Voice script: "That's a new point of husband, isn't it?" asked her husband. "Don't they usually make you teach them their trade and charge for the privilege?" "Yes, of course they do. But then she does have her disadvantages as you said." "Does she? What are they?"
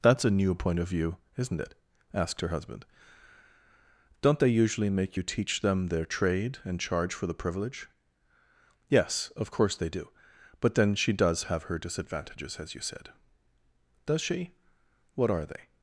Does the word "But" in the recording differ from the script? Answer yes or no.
no